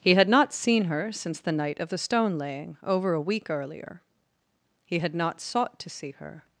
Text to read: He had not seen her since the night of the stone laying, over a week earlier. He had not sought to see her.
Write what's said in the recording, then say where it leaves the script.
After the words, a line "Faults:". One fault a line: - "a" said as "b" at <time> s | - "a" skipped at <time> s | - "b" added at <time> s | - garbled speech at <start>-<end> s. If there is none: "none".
He had not seen her since the night of the stone laying, over a week earlier. He had not sought to see her.
Faults:
none